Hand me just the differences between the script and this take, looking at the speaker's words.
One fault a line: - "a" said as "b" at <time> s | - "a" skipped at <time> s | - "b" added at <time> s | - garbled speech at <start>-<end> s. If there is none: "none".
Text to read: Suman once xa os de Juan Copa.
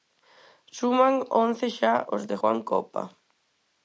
none